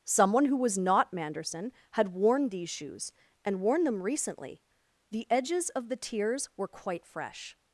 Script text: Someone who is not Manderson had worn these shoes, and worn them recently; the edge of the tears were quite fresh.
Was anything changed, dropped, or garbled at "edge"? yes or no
yes